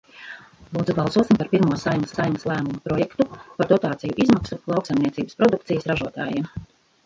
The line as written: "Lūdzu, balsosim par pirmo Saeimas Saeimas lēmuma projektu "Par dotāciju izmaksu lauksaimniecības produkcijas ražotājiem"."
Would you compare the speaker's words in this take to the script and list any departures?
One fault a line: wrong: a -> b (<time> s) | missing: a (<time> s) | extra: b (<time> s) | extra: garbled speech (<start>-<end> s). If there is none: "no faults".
no faults